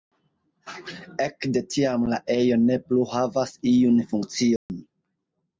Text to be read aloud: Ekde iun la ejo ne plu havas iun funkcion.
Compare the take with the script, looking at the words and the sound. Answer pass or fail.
fail